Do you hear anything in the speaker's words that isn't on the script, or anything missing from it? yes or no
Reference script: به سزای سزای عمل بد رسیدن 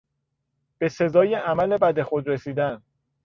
yes